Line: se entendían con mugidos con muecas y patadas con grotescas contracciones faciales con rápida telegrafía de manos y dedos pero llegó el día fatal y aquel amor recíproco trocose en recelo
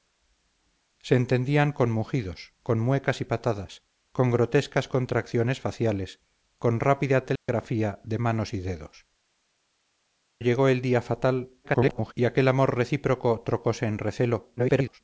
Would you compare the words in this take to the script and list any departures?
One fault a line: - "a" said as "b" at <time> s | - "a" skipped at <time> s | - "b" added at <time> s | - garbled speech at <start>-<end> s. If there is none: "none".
- "pero" skipped at 9.1 s
- garbled speech at 11.6-12.1 s
- garbled speech at 14.6-15.0 s